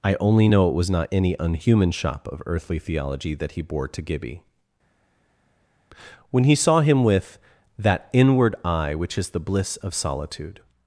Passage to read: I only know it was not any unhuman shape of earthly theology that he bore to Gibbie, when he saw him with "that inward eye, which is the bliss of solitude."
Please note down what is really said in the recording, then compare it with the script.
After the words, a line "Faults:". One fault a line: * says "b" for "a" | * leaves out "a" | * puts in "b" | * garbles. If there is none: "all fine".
I only know it was not any unhuman shop of earthly theology that he bore to Gibbie, when he saw him with "that inward eye, which is the bliss of solitude."
Faults:
* says "shop" for "shape"